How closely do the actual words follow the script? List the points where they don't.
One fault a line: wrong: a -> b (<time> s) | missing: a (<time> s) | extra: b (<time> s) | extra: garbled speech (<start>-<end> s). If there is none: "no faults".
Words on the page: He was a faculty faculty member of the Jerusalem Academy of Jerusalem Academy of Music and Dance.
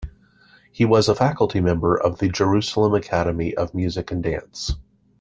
missing: faculty (1.6 s)
missing: Jerusalem Academy of (3.7 s)